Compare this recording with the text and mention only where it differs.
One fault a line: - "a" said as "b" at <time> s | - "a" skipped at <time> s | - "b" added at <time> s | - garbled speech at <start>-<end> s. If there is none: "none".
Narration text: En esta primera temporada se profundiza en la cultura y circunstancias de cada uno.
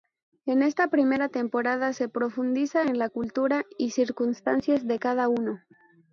none